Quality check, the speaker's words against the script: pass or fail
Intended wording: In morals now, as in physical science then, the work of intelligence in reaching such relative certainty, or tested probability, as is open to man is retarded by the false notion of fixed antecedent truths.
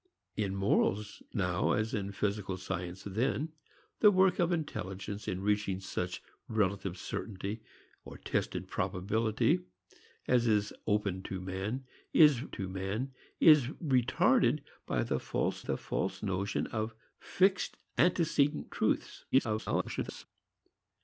fail